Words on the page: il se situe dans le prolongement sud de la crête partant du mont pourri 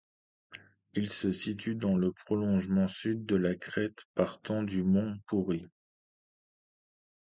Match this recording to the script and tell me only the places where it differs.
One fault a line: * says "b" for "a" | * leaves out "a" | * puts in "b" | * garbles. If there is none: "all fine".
all fine